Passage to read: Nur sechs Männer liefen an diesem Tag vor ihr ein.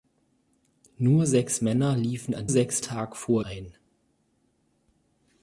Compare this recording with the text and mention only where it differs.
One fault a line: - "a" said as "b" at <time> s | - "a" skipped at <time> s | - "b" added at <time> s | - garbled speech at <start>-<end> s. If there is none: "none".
- "diesem" said as "sechs" at 2.5 s
- "ihr" skipped at 3.4 s